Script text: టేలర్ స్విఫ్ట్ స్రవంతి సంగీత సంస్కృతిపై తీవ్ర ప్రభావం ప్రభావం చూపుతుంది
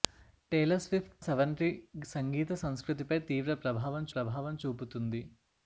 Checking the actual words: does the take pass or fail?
pass